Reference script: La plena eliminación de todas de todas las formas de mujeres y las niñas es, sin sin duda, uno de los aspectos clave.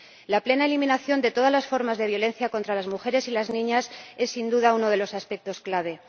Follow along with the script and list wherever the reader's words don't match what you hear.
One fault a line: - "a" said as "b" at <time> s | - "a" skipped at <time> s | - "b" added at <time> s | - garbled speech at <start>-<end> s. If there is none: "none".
- "de todas" skipped at 1.5 s
- "violencia contra las" added at 2.1 s
- "sin" skipped at 4.5 s